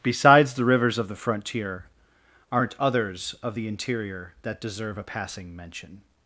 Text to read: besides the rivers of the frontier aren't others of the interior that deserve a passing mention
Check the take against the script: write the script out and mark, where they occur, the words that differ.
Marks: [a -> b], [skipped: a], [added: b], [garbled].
besides the rivers of the frontier aren't others of the interior that deserve a passing mention